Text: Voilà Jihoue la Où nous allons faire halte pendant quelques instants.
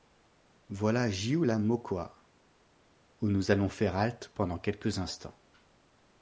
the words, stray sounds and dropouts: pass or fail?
fail